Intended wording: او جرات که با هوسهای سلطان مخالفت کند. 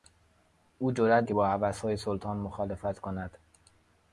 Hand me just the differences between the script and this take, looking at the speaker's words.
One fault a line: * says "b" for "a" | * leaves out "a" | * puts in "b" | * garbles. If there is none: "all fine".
all fine